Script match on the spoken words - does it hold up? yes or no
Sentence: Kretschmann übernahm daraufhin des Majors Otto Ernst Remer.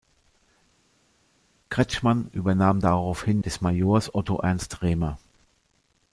yes